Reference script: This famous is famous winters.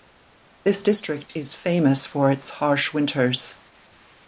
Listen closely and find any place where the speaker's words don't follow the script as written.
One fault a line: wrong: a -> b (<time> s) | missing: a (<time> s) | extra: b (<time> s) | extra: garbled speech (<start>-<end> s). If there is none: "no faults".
wrong: famous -> district (0.8 s)
extra: for its harsh (2.1 s)